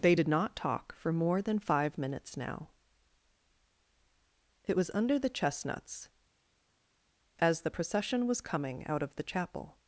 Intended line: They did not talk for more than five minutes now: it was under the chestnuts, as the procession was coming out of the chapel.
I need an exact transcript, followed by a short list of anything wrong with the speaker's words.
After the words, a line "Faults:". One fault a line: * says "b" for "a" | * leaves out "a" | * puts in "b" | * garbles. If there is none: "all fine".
They did not talk for more than five minutes now: it was under the chestnuts, as the procession was coming out of the chapel.
Faults:
all fine